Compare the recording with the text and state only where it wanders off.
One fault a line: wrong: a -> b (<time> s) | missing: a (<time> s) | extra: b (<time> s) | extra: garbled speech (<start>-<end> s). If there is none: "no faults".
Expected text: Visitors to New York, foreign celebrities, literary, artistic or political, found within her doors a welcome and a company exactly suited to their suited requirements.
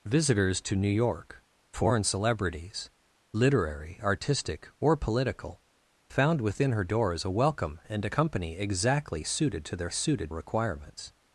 no faults